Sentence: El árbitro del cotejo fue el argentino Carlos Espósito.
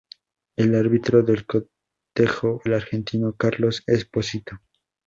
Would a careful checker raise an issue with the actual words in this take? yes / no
yes